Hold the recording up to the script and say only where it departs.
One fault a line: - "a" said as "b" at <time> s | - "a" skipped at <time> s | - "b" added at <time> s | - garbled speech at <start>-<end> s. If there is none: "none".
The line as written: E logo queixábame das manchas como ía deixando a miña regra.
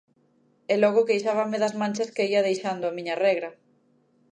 - "como" said as "que" at 2.1 s